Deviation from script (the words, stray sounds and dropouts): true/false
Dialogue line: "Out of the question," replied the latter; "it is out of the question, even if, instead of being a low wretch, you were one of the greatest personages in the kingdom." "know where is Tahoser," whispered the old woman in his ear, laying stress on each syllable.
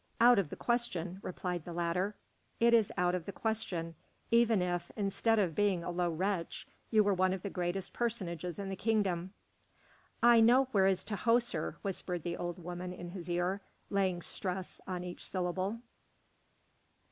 true